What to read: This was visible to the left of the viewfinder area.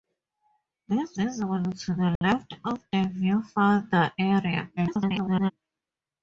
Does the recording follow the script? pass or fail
fail